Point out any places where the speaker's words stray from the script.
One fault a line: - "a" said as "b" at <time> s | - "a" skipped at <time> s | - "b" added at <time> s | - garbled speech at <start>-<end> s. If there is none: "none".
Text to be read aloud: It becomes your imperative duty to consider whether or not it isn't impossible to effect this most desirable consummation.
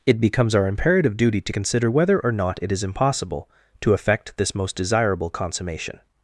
- "your" said as "our" at 0.6 s
- "isn't" said as "is" at 2.7 s